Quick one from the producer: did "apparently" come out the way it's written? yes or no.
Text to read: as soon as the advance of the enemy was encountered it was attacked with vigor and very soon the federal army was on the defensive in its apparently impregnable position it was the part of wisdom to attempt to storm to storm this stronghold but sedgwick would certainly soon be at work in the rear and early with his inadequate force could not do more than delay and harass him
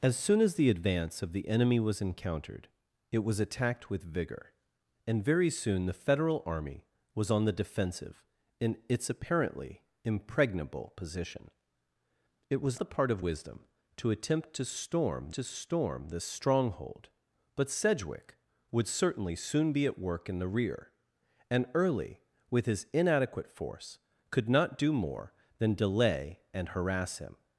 yes